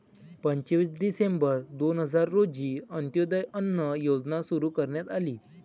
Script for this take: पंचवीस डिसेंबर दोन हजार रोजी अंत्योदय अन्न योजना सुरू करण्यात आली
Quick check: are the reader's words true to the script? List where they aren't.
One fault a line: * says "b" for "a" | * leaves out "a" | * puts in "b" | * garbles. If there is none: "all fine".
all fine